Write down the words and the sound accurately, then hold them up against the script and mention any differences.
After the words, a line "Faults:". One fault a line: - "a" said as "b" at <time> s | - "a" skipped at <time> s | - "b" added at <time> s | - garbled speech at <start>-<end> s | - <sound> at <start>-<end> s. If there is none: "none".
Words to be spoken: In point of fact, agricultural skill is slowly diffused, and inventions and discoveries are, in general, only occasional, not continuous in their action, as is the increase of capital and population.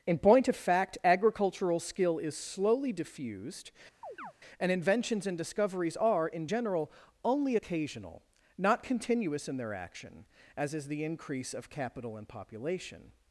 In point of fact, agricultural skill is slowly diffused, and inventions and discoveries are, in general, only occasional, not continuous in their action, as is the increase of capital and population.
Faults:
- chirp at 4.0-4.3 s